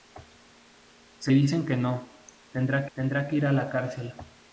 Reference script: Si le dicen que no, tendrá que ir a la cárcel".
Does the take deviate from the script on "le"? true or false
true